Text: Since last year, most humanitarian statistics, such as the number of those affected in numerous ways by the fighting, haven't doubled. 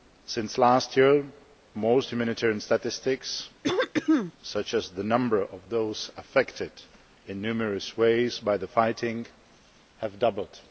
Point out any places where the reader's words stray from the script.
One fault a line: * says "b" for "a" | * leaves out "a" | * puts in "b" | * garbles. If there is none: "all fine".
* says "have" for "haven't"